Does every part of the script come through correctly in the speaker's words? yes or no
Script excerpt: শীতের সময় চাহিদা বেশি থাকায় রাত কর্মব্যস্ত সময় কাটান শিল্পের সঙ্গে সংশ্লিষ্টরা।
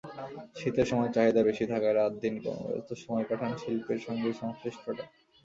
no